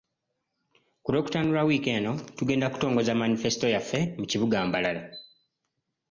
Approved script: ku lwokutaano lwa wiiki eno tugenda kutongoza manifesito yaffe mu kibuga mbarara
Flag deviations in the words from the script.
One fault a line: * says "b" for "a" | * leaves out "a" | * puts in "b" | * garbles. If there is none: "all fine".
all fine